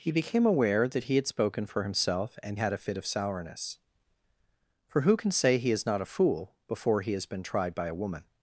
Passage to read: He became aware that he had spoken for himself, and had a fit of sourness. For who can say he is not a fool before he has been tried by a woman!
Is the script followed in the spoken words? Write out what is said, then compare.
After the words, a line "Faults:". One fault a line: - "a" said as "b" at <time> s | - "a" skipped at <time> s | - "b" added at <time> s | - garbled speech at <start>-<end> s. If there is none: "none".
He became aware that he had spoken for himself, and had a fit of sourness. For who can say he is not a fool before he has been tried by a woman!
Faults:
none